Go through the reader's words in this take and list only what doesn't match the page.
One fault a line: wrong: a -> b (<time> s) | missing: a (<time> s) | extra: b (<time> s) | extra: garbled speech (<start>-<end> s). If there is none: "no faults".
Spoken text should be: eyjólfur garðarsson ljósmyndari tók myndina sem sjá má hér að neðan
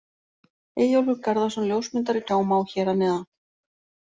missing: tók myndina sem (2.2 s)